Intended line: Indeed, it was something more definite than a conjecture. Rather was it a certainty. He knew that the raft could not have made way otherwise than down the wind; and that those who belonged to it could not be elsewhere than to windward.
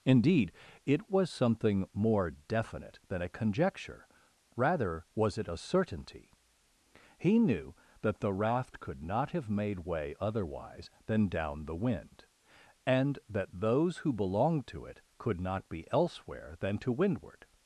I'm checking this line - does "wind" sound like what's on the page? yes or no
yes